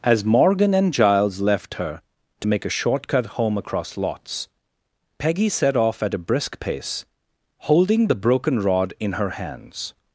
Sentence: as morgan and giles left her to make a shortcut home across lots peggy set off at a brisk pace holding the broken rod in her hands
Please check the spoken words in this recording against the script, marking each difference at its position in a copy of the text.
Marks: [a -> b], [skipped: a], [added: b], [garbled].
as morgan and giles left her to make a shortcut home across lots peggy set off at a brisk pace holding the broken rod in her hands